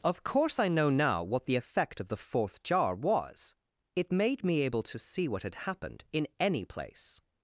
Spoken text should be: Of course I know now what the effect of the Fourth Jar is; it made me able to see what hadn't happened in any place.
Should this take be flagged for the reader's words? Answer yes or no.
yes